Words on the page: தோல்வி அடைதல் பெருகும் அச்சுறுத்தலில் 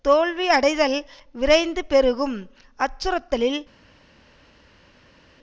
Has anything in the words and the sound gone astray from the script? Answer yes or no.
yes